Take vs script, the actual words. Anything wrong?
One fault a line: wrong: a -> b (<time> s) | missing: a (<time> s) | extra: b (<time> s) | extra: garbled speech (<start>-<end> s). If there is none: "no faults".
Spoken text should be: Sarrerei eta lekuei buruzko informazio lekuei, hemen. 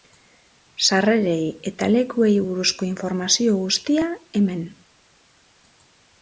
wrong: lekuei -> guztia (3.7 s)